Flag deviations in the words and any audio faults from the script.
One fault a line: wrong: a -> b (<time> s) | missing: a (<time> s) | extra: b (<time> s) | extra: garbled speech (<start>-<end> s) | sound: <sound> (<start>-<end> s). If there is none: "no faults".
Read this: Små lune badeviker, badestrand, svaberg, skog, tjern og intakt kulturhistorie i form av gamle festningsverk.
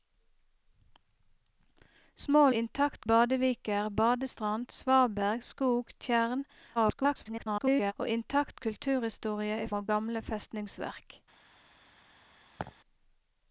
wrong: lune -> intakt (2.5 s)
extra: garbled speech (6.8-7.9 s)
missing: form (9.7 s)
sound: laugh (12.6-12.7 s)